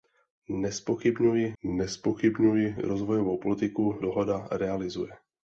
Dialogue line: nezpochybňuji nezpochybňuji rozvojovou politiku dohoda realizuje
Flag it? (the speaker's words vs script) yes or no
no